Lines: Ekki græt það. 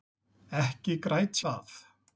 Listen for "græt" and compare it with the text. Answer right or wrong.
right